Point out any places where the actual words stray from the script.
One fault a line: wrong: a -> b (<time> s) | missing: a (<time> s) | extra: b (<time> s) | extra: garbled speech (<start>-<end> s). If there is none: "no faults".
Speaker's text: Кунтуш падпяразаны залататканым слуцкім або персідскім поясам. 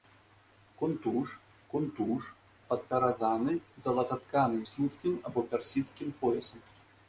extra: кунтуш (1.7 s)